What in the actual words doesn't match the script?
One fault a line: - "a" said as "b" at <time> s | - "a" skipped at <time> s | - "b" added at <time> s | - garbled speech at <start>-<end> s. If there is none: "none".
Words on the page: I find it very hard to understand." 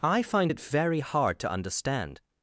none